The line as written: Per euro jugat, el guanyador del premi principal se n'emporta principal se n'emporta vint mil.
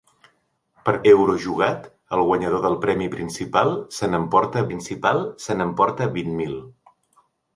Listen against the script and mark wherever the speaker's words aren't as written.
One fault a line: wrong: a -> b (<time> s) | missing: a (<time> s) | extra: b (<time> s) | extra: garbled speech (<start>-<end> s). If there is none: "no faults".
no faults